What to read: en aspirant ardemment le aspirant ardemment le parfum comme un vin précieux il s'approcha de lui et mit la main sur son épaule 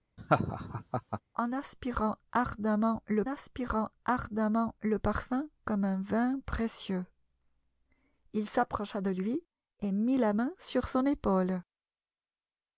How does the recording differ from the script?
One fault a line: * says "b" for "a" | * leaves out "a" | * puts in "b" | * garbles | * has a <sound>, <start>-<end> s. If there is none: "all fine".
* has a laugh, 0.2-1.2 s